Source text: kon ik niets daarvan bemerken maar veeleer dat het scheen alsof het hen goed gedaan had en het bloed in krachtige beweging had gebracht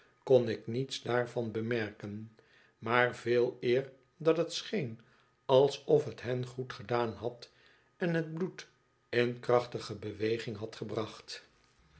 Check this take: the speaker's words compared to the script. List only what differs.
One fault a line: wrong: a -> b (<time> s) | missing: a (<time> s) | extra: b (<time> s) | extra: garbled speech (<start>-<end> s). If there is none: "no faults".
no faults